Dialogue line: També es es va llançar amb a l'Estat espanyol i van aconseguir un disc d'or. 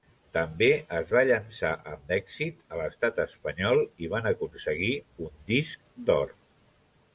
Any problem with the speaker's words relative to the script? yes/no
yes